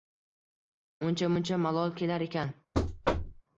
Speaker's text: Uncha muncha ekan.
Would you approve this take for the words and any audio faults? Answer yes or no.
no